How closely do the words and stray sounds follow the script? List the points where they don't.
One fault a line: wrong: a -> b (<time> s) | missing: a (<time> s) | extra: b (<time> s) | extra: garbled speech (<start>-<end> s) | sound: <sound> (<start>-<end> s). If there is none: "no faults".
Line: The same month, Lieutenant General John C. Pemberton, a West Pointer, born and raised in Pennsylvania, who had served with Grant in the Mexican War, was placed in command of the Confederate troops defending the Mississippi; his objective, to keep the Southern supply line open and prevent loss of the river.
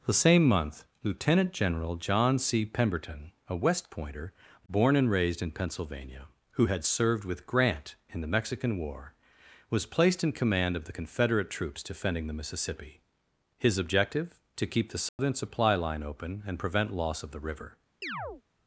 sound: dropout (15.1-15.2 s)
sound: chirp (18.0-18.4 s)